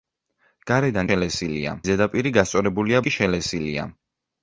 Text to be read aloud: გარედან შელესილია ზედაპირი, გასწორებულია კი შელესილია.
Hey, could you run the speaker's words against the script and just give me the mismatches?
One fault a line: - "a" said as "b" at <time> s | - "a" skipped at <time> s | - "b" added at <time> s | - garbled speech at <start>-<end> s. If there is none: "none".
none